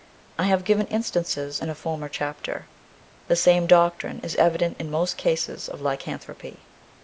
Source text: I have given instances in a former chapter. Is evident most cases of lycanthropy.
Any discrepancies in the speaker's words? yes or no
yes